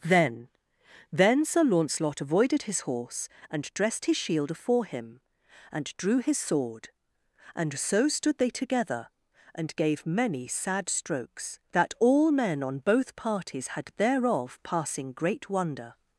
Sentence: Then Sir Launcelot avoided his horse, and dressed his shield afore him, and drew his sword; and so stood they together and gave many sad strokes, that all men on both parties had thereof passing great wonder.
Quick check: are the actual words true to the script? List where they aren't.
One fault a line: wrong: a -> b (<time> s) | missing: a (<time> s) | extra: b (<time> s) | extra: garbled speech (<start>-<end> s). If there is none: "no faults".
extra: then (1.1 s)